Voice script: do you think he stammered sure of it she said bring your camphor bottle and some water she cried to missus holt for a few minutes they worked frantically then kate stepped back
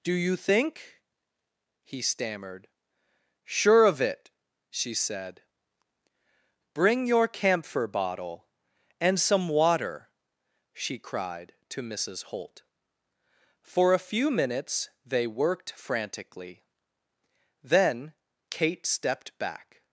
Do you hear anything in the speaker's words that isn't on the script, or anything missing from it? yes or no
no